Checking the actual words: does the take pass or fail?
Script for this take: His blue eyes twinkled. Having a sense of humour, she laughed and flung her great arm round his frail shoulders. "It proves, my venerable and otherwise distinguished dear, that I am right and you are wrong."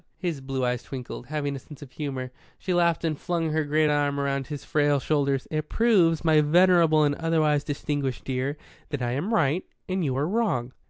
pass